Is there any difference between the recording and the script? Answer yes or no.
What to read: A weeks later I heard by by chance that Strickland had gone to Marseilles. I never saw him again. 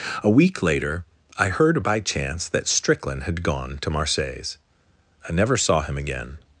yes